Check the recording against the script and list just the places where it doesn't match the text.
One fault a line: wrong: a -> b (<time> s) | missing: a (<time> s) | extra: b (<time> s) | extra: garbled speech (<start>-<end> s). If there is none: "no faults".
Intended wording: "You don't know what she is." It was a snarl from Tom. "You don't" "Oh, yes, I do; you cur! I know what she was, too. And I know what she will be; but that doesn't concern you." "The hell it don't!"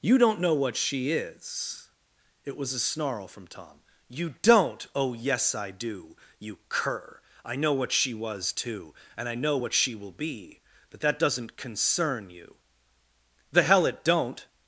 no faults